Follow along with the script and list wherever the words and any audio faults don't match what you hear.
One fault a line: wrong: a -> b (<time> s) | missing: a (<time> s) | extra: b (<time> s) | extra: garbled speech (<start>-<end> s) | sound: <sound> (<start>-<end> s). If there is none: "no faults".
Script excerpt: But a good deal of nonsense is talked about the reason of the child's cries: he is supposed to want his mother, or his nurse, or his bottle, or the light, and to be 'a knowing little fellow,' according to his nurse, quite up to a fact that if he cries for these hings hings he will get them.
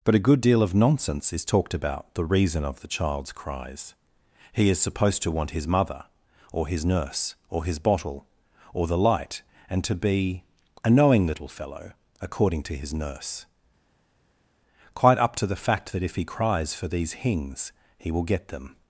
wrong: a -> the (15.5 s)
missing: hings (17.7 s)